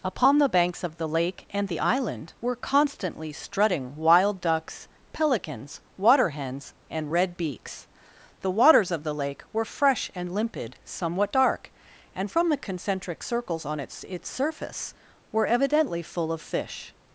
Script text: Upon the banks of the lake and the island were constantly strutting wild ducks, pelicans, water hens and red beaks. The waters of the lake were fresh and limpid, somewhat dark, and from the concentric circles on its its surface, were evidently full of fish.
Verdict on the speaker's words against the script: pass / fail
pass